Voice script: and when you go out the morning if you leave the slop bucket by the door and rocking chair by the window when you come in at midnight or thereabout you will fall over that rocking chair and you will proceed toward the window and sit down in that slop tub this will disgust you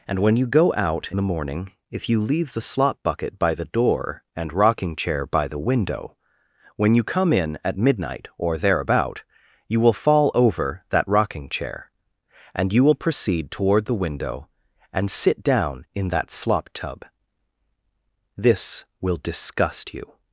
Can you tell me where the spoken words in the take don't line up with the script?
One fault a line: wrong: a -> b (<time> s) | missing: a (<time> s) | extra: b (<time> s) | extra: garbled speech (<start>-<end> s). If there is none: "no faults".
no faults